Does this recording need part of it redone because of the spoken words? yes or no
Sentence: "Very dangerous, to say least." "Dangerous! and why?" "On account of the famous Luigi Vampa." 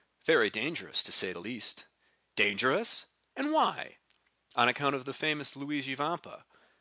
yes